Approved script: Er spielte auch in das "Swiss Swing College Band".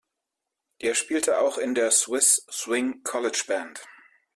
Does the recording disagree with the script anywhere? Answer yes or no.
yes